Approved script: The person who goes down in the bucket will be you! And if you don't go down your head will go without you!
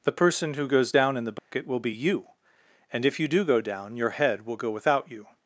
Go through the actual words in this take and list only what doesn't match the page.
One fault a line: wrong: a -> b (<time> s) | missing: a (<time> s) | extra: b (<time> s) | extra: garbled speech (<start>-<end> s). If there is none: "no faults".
wrong: don't -> do (3.3 s)